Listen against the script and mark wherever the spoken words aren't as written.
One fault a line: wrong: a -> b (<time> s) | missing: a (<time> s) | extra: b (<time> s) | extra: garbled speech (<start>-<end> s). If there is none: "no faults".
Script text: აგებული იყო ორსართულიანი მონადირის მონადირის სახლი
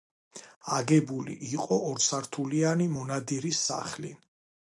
missing: მონადირის (3.7 s)